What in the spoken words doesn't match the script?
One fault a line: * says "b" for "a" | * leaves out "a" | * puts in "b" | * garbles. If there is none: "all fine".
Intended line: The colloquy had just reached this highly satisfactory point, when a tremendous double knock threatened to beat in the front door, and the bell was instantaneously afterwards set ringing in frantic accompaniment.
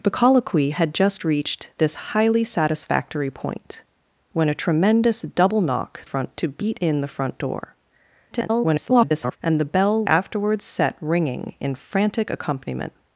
* says "front" for "threatened"
* garbles
* leaves out "was instantaneously"